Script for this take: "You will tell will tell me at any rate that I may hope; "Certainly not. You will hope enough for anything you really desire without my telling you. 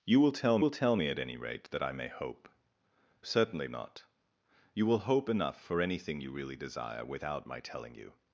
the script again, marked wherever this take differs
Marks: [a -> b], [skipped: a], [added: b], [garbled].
"You will tell will tell me at any rate that I may hope; "Certainly not. You will hope enough for anything you really desire without my telling you.